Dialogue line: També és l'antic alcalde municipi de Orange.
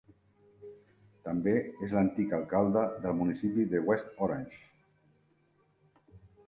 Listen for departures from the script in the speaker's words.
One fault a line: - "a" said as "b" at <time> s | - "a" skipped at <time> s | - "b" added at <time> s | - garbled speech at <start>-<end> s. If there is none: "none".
- "del" added at 3.0 s
- "West" added at 3.9 s